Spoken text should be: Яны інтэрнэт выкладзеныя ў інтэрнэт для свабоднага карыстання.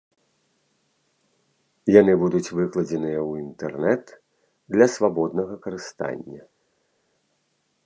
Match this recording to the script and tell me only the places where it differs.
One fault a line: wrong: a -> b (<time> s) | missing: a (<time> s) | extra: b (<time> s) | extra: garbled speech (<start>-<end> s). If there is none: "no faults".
wrong: інтэрнэт -> будуць (2.2 s)